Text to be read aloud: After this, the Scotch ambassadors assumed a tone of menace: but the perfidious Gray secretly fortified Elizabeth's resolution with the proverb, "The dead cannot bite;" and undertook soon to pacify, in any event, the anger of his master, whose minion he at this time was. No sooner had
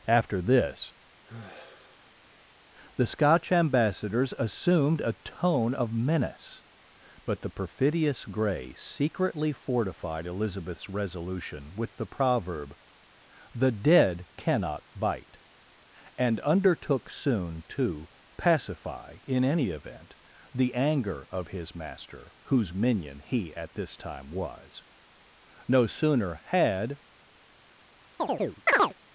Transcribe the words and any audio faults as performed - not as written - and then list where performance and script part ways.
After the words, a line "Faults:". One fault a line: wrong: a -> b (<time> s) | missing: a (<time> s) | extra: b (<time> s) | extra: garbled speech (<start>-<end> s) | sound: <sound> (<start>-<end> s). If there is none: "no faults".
After this, the Scotch ambassadors assumed a tone of menace: but the perfidious Gray secretly fortified Elizabeth's resolution with the proverb, "The dead cannot bite;" and undertook soon to pacify, in any event, the anger of his master, whose minion he at this time was. No sooner had
Faults:
sound: sigh (1.2-2.6 s)
sound: chirp (28.2-28.9 s)